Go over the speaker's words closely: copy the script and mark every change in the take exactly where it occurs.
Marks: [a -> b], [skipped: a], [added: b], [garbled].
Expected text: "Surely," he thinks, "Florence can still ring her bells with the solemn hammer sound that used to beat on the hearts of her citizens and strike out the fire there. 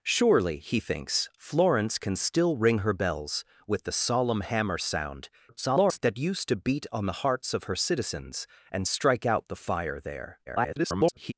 "Surely," he thinks, "Florence can still ring her bells with the solemn hammer sound [garbled] that used to beat on the hearts of her citizens and strike out the fire there. [garbled]